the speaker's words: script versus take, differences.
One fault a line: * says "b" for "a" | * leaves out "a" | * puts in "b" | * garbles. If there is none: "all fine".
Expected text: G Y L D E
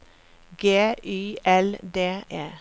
all fine